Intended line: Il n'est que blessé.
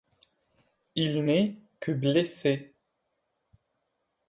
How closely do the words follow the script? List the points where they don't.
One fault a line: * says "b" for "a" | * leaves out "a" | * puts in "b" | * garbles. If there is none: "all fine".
all fine